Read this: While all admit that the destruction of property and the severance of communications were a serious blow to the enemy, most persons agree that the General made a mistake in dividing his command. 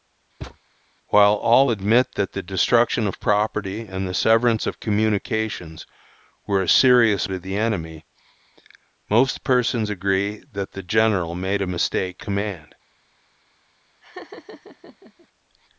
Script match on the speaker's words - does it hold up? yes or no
no